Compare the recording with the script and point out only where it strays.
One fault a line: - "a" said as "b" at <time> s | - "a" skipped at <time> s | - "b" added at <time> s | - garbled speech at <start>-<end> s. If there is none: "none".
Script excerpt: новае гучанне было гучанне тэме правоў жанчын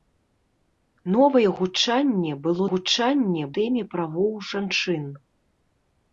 none